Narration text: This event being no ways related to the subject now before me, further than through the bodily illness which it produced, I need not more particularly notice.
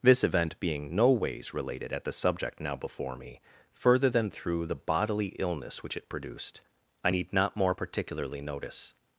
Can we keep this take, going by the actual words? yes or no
no